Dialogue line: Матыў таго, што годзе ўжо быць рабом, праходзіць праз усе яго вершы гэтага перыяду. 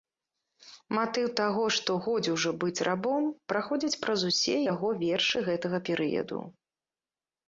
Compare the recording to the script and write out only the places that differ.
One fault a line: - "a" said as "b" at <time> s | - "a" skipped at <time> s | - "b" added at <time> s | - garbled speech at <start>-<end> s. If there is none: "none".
none